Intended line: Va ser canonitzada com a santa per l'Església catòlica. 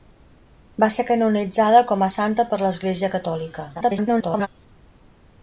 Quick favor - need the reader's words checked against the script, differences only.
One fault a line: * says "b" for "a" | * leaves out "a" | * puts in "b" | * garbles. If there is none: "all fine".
* garbles